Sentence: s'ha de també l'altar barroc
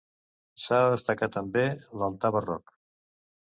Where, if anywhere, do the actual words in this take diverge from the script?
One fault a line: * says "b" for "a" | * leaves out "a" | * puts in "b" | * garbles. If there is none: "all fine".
* puts in "destacar"